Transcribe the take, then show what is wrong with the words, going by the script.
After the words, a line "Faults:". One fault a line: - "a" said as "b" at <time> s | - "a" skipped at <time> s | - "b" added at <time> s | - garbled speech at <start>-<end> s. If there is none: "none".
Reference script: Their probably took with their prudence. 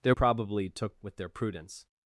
Their probably took with their prudence.
Faults:
none